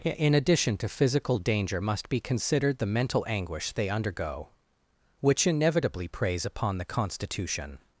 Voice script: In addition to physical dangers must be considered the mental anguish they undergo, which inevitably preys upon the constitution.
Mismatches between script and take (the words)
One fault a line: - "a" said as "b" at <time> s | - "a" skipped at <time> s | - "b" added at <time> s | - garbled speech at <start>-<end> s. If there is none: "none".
- "dangers" said as "danger" at 1.4 s